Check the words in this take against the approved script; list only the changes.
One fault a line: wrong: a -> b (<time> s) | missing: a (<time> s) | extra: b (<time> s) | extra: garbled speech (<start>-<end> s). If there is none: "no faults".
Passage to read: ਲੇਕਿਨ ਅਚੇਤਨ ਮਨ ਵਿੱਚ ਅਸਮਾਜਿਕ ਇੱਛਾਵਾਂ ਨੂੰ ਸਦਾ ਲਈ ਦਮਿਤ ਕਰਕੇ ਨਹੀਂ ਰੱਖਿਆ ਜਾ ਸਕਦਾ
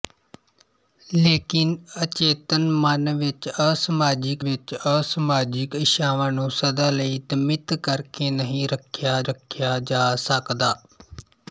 extra: ਵਿੱਚ ਅਸਮਾਜਿਕ (4.4 s)
extra: ਰੱਖਿਆ (9.3 s)